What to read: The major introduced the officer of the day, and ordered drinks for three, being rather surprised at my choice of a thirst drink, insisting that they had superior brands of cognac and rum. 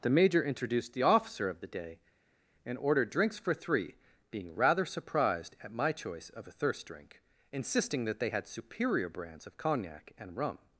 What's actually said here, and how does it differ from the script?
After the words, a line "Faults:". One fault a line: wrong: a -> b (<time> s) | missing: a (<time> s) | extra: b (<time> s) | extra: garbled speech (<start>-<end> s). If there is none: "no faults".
The major introduced the officer of the day, and ordered drinks for three, being rather surprised at my choice of a thirst drink, insisting that they had superior brands of cognac and rum.
Faults:
no faults